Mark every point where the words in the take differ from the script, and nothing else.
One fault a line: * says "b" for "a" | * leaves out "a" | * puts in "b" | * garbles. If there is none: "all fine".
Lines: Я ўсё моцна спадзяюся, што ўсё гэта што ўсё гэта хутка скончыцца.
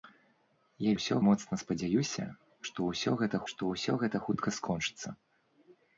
all fine